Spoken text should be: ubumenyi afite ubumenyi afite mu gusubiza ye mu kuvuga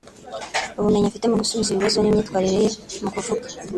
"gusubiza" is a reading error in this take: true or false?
true